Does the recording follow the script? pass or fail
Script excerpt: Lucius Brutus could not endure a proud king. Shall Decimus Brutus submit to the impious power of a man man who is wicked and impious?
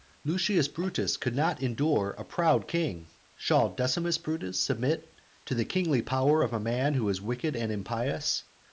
fail